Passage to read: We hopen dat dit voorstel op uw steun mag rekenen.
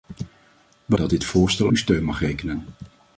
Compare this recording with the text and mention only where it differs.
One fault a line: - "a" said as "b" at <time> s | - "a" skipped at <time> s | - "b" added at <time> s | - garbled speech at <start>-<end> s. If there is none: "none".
- "hopen" skipped at 0.9 s
- "op" skipped at 1.7 s